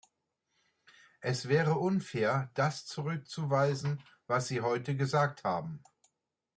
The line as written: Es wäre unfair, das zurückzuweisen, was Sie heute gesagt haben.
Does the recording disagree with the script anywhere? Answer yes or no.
no